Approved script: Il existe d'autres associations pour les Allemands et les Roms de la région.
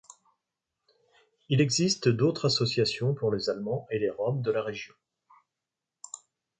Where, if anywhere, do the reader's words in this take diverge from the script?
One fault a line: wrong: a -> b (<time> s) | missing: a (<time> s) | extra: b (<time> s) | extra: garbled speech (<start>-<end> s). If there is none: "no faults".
no faults